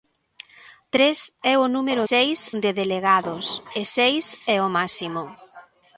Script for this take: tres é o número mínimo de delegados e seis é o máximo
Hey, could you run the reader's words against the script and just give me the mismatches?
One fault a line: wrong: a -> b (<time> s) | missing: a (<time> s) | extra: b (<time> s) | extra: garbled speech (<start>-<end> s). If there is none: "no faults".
wrong: mínimo -> seis (2.1 s)